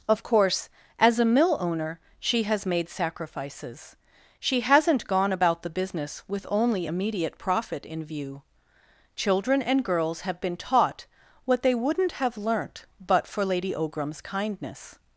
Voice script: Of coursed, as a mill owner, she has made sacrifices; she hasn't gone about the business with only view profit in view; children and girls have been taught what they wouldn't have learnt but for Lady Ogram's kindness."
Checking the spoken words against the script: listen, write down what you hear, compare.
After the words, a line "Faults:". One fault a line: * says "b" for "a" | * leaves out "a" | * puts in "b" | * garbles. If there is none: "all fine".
Of course, as a mill owner, she has made sacrifices; she hasn't gone about the business with only immediate profit in view; children and girls have been taught what they wouldn't have learnt but for Lady Ogram's kindness."
Faults:
* says "course" for "coursed"
* says "immediate" for "view"